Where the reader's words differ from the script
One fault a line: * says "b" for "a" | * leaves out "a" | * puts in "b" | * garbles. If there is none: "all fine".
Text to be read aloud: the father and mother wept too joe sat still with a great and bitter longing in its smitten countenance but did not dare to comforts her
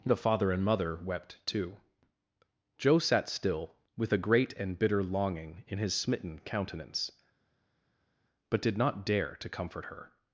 * says "his" for "its"
* says "comfort" for "comforts"